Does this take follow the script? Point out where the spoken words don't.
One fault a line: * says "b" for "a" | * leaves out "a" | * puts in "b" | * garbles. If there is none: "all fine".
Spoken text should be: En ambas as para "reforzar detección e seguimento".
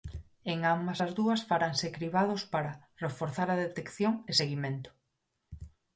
* puts in "dúas faranse cribados"
* puts in "a"